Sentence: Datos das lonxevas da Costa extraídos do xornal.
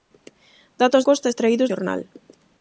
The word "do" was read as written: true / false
false